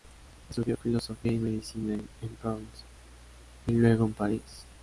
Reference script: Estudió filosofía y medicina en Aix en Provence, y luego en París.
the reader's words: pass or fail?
fail